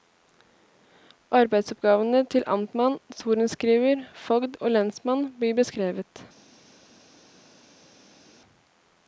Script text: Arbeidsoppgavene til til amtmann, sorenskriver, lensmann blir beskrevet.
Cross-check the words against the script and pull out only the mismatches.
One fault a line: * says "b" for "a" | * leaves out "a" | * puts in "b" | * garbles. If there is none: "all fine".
* leaves out "til"
* puts in "fogd og"